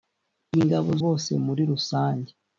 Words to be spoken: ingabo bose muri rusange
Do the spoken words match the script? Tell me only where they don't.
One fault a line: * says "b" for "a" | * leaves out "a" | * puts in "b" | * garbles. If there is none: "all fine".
all fine